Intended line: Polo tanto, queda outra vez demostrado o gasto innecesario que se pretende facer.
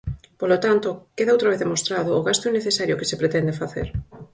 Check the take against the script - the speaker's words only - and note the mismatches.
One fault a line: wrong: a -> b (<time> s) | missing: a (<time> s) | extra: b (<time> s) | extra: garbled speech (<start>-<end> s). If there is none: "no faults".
no faults